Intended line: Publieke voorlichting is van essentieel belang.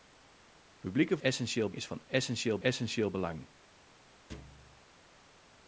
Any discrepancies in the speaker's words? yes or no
yes